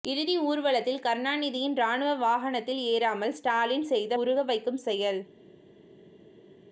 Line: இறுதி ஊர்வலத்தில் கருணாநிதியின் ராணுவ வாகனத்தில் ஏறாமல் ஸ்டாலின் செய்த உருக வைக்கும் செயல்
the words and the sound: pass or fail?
pass